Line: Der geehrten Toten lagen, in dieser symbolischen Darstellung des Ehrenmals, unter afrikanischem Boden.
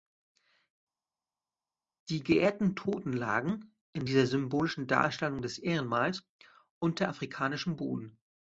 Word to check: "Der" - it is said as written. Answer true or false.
false